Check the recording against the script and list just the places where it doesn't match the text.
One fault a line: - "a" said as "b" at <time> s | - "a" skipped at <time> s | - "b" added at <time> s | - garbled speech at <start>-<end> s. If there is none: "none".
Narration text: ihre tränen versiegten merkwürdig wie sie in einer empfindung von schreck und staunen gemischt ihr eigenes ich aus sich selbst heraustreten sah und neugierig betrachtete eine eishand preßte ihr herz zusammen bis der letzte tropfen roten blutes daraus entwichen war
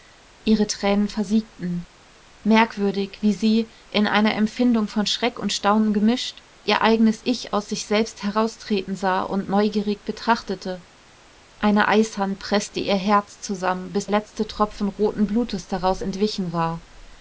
- "der" skipped at 14.1 s